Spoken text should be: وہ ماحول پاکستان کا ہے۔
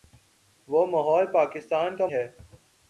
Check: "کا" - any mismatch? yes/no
no